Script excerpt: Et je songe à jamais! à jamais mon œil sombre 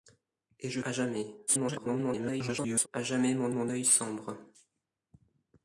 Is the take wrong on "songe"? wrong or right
wrong